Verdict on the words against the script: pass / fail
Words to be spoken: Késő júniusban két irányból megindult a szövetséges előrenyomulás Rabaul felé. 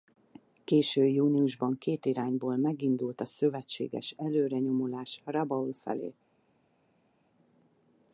pass